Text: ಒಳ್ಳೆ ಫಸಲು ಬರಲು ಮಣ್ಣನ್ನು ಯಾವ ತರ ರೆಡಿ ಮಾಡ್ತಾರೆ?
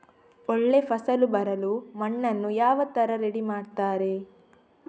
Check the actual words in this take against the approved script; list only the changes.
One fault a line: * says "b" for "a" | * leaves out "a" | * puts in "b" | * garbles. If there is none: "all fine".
all fine